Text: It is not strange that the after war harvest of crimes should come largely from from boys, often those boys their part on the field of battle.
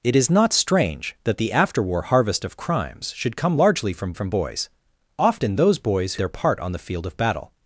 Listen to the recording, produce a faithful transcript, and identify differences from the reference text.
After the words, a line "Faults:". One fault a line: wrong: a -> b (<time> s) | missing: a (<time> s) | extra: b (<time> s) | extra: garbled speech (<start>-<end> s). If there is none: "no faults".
It is not strange that the after war harvest of crimes should come largely from from boys, often those boys their part on the field of battle.
Faults:
no faults